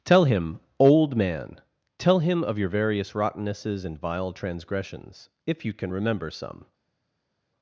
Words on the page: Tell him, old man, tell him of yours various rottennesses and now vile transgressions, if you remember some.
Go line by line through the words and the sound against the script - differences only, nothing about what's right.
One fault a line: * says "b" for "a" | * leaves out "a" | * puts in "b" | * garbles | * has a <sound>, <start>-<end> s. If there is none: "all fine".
* says "your" for "yours"
* leaves out "now"
* puts in "can"